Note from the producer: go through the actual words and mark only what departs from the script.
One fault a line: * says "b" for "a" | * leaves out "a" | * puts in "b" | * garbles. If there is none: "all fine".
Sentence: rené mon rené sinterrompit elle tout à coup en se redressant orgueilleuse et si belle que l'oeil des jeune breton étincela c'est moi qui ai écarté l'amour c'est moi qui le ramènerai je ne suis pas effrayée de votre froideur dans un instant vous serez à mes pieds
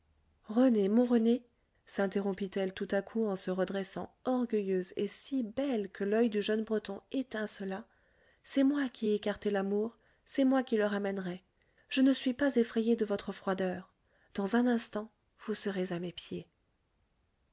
* says "du" for "des"